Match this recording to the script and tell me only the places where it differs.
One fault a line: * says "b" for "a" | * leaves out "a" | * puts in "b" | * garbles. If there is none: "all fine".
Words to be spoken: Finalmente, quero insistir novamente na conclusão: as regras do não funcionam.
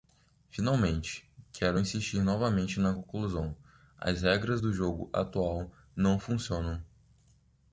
* puts in "jogo atual"